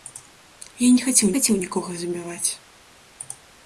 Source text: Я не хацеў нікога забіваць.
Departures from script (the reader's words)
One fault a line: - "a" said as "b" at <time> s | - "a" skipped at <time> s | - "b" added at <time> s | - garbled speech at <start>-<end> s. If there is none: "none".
- "хацеў" added at 1.3 s